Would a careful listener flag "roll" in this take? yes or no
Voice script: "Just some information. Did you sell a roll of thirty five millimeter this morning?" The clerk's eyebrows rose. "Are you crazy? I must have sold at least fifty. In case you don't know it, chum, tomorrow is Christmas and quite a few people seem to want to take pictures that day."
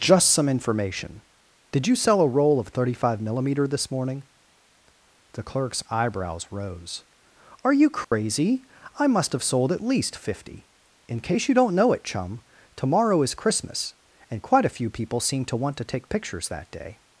no